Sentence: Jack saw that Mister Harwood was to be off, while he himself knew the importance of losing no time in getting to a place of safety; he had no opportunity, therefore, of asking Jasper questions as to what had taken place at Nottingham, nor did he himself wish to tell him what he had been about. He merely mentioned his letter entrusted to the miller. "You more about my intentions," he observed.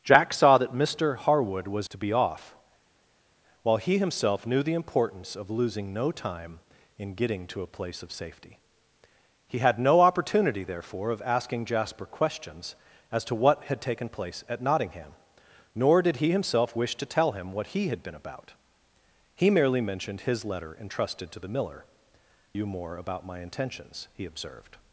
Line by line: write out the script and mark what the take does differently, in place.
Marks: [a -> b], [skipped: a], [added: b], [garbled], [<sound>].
Jack saw that Mister Harwood was to be off, while he himself knew the importance of losing no time in getting to a place of safety; he had no opportunity, therefore, of asking Jasper questions as to what had taken place at Nottingham, nor did he himself wish to tell him what he had been about. He merely mentioned his letter entrusted to the miller. "You more about my intentions," he observed.